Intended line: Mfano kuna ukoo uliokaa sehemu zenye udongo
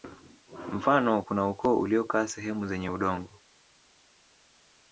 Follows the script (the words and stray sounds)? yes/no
yes